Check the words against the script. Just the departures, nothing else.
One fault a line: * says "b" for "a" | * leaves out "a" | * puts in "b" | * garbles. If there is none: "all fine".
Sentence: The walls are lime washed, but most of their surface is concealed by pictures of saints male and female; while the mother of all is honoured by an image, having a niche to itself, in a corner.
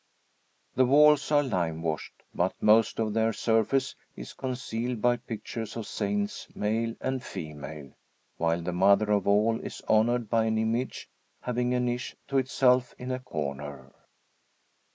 all fine